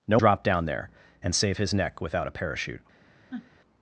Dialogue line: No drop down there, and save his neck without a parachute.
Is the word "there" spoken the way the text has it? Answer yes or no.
yes